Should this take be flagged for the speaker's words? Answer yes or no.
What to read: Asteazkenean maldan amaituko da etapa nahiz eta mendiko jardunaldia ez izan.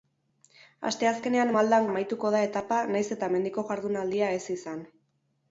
no